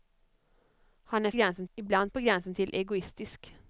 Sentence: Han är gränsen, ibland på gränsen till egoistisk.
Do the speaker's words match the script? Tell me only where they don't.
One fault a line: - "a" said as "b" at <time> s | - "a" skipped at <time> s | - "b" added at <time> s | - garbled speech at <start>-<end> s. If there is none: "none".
none